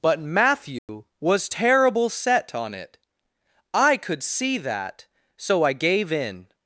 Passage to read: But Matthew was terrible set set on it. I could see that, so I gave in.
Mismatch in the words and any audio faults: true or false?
true